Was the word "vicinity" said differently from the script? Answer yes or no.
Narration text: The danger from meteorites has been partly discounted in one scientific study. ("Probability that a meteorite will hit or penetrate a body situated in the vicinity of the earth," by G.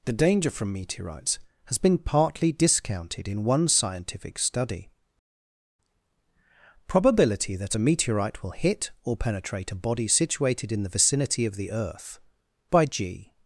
no